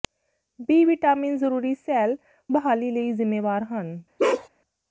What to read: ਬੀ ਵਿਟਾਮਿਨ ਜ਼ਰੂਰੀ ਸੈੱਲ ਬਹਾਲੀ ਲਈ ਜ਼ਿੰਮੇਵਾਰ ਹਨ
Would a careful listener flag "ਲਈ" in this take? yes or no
no